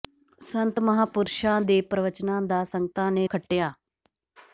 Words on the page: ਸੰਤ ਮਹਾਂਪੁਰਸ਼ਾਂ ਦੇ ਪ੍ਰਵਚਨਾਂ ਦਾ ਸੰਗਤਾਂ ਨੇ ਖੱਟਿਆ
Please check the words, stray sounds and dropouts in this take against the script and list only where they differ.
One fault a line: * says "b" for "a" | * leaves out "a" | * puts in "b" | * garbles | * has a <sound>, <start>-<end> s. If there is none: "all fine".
all fine